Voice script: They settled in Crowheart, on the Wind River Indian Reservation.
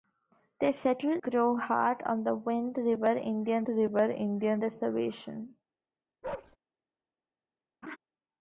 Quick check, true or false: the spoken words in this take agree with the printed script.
false